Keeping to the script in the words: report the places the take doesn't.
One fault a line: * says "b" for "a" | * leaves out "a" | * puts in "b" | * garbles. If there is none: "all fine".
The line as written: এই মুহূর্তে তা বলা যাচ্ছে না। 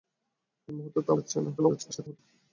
* leaves out "বলা"
* garbles